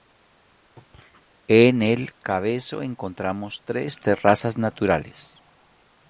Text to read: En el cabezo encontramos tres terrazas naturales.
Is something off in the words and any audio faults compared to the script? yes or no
no